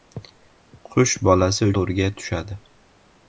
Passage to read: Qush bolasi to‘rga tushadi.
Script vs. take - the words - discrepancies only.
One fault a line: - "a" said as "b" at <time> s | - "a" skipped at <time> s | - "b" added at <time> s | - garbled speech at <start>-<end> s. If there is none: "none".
none